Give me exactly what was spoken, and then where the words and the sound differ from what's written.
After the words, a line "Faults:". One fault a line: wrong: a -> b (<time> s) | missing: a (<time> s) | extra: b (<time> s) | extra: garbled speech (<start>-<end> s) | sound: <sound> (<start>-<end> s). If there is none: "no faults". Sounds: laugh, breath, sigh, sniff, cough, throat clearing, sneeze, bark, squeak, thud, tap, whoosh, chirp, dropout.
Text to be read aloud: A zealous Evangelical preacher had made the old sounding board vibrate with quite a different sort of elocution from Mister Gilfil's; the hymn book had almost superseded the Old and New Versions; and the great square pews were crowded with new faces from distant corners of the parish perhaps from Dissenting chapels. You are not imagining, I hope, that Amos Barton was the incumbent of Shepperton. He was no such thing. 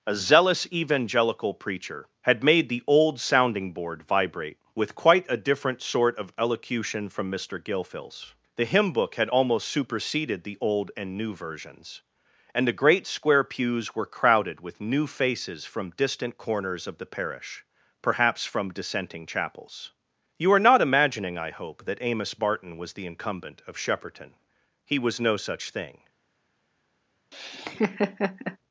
A zealous Evangelical preacher had made the old sounding board vibrate with quite a different sort of elocution from Mister Gilfil's; the hymn book had almost superseded the Old and New Versions; and the great square pews were crowded with new faces from distant corners of the parish perhaps from Dissenting chapels. You are not imagining, I hope, that Amos Barton was the incumbent of Shepperton. He was no such thing.
Faults:
sound: laugh (27.3-28.6 s)